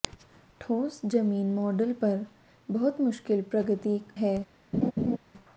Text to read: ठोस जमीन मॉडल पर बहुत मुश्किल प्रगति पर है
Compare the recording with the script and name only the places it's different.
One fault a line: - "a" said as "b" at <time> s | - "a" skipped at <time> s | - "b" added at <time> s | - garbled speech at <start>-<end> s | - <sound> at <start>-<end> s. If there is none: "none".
- "पर" skipped at 4.0 s
- laugh at 4.7-5.2 s